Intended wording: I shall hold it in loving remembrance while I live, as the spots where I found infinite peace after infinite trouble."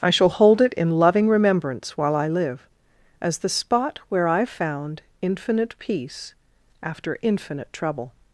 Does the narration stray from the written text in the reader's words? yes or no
yes